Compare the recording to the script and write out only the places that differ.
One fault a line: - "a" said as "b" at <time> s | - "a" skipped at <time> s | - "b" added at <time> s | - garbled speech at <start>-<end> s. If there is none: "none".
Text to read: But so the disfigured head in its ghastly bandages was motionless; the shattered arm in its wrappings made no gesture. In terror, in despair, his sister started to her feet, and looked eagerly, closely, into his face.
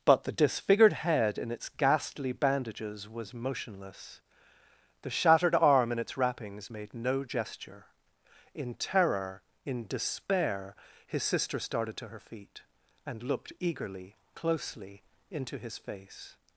- "so" skipped at 0.2 s